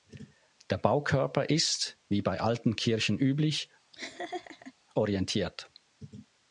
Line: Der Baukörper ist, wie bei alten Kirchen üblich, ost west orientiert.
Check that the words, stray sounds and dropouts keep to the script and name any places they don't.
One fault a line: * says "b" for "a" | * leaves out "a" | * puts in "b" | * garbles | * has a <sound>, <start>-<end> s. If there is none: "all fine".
* leaves out "ost west"
* has a laugh, 3.9-4.7 s